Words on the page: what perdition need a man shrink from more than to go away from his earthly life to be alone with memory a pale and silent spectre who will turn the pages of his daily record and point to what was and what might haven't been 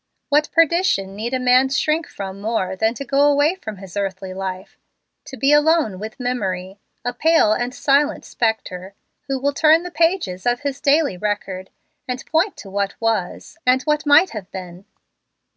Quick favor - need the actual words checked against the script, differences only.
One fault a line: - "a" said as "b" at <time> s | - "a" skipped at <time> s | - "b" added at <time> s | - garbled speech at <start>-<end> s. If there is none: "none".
- "haven't" said as "have" at 14.3 s